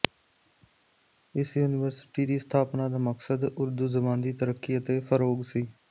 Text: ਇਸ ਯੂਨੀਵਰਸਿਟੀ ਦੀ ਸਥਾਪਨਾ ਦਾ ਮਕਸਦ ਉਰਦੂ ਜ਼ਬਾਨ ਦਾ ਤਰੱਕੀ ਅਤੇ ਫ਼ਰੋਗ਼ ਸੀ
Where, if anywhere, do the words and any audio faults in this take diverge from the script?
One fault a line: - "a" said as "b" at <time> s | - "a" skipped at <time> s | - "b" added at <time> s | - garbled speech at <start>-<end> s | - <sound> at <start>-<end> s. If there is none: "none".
- "ਦਾ" said as "ਦੀ" at 4.2 s